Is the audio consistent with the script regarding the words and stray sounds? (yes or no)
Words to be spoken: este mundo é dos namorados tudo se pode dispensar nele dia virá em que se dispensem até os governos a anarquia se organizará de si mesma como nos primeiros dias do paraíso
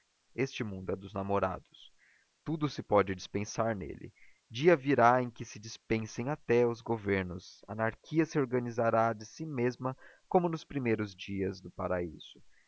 yes